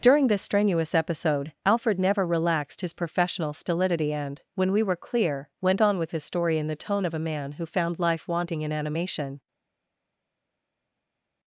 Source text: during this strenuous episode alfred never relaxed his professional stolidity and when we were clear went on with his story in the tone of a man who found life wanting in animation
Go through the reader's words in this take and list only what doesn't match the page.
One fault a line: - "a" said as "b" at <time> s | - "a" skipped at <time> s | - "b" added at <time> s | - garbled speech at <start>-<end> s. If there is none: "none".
none